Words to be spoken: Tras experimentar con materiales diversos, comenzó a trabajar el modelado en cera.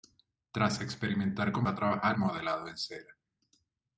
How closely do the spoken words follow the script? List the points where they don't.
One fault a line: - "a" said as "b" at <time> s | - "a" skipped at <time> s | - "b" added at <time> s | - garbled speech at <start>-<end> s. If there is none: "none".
- "materiales diversos comenzó" skipped at 1.7 s
- "el" skipped at 2.2 s